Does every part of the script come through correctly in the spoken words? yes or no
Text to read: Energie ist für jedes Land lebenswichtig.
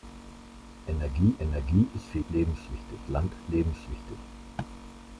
no